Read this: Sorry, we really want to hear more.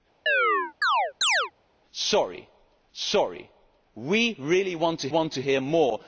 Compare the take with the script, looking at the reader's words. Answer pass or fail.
fail